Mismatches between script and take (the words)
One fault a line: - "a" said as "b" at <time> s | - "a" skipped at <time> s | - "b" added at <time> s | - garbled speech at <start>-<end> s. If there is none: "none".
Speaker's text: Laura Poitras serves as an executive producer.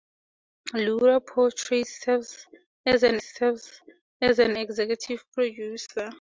- "serves as an" added at 3.2 s